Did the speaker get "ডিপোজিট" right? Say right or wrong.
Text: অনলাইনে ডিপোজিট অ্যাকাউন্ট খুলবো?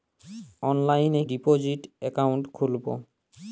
right